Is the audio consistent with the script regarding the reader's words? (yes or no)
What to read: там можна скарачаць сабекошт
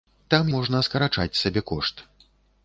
yes